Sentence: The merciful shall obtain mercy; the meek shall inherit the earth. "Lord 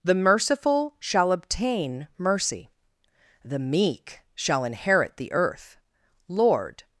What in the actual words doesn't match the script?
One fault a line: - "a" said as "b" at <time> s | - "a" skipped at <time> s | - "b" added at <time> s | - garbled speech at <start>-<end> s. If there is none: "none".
none